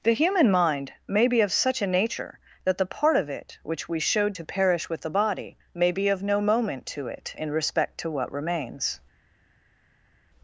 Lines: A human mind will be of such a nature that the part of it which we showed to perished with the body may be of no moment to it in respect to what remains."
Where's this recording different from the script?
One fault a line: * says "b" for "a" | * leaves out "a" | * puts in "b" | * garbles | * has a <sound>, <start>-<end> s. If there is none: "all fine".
* says "The" for "A"
* says "may" for "will"
* says "perish" for "perished"